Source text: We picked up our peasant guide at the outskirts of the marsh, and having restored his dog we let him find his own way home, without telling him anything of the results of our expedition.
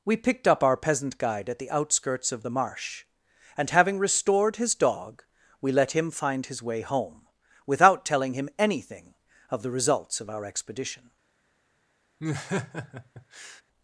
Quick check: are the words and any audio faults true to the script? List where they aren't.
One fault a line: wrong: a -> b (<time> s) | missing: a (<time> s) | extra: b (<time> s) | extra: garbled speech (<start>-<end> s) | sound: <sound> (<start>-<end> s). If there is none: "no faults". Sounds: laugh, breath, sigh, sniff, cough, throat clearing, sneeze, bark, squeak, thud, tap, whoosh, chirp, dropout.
missing: own (6.6 s)
sound: laugh (12.2-13.6 s)